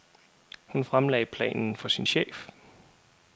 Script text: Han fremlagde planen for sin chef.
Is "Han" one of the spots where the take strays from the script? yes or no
yes